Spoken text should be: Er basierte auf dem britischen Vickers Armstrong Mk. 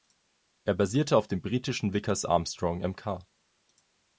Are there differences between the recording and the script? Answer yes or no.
no